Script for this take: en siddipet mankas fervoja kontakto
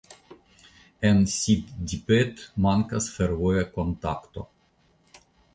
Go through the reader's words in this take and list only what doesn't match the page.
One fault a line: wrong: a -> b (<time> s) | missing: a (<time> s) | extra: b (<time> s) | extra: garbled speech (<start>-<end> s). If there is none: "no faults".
no faults